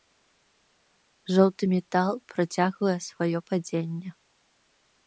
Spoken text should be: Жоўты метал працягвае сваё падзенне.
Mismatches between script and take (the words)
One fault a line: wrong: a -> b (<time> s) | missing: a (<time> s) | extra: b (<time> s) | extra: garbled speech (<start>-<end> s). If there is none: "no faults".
no faults